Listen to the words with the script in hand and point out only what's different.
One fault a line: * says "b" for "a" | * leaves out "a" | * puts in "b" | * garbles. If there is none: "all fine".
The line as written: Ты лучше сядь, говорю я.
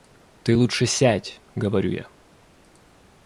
all fine